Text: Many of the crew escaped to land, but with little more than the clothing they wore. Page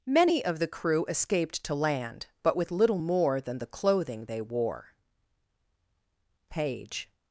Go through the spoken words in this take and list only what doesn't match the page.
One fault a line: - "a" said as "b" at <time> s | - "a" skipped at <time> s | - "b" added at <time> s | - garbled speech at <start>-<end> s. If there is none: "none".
none